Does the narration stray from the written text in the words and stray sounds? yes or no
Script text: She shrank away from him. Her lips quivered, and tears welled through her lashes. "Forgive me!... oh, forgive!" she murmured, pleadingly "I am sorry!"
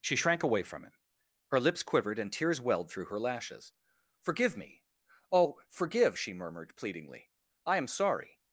no